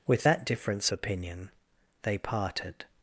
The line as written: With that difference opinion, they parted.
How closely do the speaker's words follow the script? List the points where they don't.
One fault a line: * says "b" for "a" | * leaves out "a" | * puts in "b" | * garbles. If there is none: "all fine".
all fine